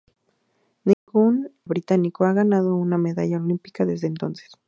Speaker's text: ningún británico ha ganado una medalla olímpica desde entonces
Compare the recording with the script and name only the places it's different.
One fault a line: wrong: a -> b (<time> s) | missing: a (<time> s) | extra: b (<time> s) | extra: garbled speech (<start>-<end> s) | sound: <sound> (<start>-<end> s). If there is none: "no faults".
sound: dropout (0.9-1.1 s)